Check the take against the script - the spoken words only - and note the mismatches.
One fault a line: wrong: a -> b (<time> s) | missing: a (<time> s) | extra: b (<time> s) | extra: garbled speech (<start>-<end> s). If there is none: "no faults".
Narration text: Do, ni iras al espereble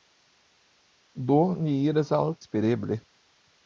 no faults